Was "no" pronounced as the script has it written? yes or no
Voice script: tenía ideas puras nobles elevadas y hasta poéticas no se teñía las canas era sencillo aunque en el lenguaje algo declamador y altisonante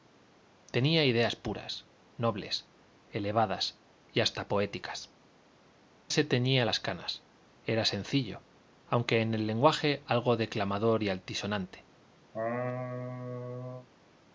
no